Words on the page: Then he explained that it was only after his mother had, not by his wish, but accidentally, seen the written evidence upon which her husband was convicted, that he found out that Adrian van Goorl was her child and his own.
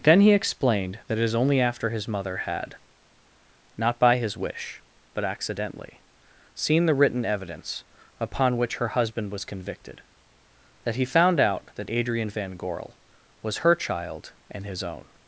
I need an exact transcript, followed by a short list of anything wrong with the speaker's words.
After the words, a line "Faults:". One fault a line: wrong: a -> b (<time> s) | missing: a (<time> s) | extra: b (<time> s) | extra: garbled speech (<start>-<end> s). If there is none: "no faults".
Then he explained that it is only after his mother had, not by his wish, but accidentally, seen the written evidence upon which her husband was convicted, that he found out that Adrian van Goorl was her child and his own.
Faults:
wrong: was -> is (1.2 s)